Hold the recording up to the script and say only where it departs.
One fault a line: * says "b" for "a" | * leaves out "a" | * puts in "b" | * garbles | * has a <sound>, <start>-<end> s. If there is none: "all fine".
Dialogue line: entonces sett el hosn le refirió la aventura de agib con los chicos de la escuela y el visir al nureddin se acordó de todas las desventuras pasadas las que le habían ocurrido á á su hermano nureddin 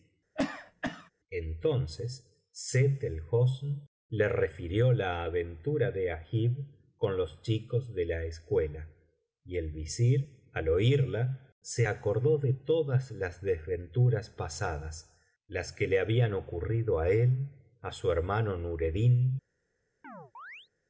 * has a cough, 0.4-1.1 s
* says "oírla" for "nureddin"
* puts in "él"
* has a chirp, 20.0-20.7 s